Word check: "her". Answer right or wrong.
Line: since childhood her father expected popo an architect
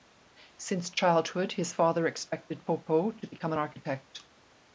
wrong